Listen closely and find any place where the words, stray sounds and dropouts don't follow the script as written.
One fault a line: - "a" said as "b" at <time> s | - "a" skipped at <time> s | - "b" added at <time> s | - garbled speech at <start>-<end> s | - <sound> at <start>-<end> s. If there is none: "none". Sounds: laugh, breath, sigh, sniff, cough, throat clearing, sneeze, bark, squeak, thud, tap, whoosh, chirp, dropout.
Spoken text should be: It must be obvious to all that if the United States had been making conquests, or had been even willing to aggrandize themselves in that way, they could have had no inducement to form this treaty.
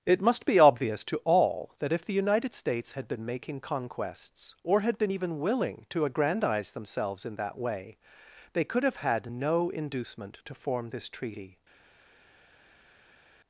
none